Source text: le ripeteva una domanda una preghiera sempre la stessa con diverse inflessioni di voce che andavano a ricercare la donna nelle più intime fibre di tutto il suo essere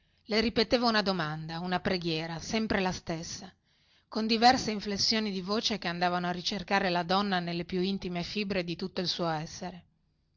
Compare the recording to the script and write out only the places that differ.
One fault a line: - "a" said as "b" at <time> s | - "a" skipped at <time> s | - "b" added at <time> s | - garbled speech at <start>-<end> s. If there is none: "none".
none